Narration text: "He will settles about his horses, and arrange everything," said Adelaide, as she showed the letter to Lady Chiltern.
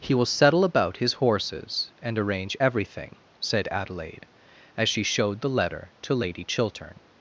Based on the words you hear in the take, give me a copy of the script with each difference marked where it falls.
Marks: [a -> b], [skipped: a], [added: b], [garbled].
"He will [settles -> settle] about his horses, and arrange everything," said Adelaide, as she showed the letter to Lady Chiltern.